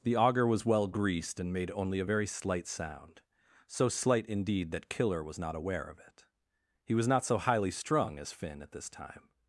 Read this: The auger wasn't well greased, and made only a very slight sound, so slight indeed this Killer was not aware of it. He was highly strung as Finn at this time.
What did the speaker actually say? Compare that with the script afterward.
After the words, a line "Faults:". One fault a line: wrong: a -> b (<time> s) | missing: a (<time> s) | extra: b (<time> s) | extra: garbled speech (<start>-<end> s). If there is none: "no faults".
The auger was well greased, and made only a very slight sound, so slight indeed that Killer was not aware of it. He was not so highly strung as Finn at this time.
Faults:
wrong: wasn't -> was (0.5 s)
wrong: this -> that (4.7 s)
extra: not so (7.1 s)